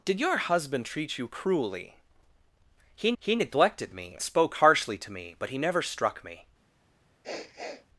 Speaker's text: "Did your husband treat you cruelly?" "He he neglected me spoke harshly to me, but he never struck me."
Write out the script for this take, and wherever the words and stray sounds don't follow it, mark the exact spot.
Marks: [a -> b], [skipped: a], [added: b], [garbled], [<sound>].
"Did your husband treat you cruelly?" "He he neglected me spoke harshly to me, but he never struck me." [sniff]